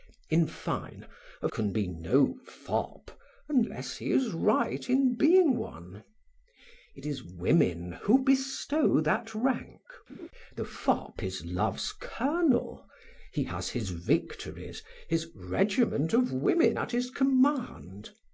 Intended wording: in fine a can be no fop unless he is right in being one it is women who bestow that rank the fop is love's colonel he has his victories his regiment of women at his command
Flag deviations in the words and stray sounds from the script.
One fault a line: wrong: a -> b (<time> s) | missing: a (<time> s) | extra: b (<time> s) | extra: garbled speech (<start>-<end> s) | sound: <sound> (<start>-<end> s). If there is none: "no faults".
sound: laugh (10.1-10.3 s)